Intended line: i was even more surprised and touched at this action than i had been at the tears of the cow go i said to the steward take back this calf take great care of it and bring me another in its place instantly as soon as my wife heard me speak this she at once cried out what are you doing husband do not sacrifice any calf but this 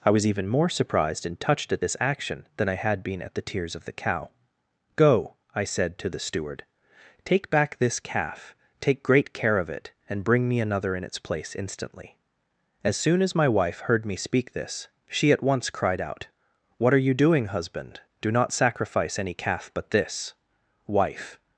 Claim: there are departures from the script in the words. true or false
true